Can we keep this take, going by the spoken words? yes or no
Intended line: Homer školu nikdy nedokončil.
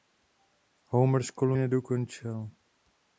no